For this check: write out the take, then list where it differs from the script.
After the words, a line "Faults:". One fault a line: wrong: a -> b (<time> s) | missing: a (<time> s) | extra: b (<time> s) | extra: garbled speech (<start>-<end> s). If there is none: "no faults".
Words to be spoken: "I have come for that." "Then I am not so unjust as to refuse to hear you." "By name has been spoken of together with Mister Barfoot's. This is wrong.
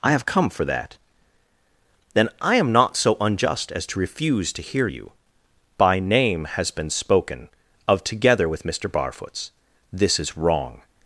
"I have come for that." "Then I am not so unjust as to refuse to hear you." "By name has been spoken of together with Mister Barfoot's. This is wrong.
Faults:
no faults